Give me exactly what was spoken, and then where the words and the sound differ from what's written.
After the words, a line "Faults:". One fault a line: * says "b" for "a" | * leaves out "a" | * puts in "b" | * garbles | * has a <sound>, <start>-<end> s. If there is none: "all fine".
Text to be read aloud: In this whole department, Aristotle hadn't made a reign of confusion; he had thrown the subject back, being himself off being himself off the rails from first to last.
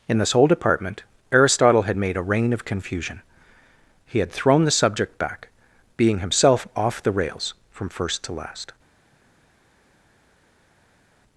In this whole department, Aristotle had made a reign of confusion; he had thrown the subject back, being himself off the rails from first to last.
Faults:
* says "had" for "hadn't"
* leaves out "being himself off"